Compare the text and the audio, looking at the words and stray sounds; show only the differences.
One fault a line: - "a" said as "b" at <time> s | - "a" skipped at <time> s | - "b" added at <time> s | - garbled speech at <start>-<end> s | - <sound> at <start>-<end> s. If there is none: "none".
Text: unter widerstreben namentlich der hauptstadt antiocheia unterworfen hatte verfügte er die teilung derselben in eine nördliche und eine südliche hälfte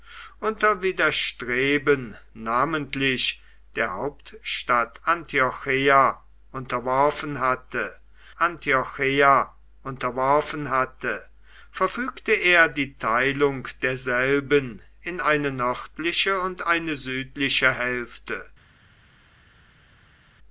- "antiocheia unterworfen hatte" added at 8.4 s